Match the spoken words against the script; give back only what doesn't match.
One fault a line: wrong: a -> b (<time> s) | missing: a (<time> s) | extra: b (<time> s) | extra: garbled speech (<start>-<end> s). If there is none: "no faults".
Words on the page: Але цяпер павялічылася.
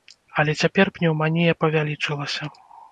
extra: пнеўманія (1.0 s)